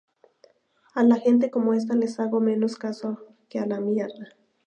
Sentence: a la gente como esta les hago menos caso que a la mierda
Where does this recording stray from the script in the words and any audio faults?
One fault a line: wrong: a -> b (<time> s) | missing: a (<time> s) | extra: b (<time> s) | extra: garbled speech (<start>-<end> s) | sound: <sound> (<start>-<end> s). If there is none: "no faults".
no faults